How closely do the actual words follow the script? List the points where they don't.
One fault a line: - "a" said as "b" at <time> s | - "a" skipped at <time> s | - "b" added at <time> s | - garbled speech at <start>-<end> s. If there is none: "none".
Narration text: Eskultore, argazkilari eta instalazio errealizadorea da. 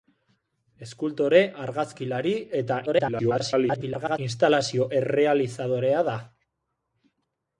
- garbled speech at 2.9-4.2 s